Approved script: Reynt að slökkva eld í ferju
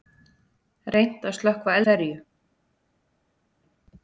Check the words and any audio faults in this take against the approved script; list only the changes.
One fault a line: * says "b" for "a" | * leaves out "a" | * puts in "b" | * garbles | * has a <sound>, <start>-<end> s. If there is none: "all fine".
* leaves out "eld"